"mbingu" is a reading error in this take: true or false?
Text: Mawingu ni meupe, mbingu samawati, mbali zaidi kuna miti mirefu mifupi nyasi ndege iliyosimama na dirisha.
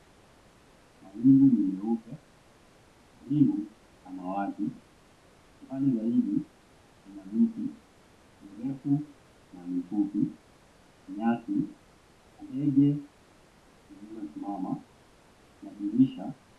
false